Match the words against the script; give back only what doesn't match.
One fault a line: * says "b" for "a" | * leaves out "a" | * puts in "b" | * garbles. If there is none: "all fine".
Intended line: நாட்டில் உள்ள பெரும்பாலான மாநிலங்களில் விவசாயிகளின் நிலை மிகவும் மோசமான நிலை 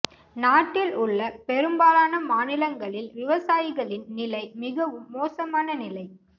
all fine